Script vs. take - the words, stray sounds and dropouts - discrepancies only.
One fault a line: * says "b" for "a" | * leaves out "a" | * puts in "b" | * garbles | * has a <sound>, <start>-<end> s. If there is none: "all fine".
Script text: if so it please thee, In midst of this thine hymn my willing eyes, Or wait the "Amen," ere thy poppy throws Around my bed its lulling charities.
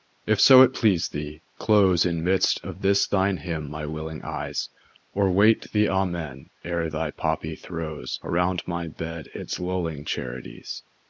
* puts in "close"